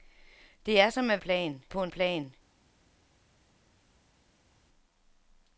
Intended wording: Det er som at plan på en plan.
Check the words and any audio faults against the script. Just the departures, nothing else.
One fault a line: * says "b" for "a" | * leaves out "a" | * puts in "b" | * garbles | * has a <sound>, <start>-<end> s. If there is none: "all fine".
all fine